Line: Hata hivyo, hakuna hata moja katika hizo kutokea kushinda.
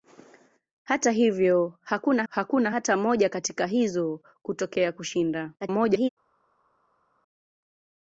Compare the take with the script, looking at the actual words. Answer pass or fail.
fail